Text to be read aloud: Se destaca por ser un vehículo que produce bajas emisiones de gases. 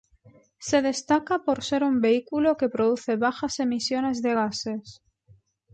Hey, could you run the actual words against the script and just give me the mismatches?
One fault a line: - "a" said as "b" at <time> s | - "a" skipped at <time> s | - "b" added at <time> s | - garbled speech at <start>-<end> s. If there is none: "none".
none